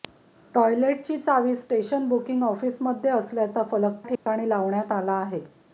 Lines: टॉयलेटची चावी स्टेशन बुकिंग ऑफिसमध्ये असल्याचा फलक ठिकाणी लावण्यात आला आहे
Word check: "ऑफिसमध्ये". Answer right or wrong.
right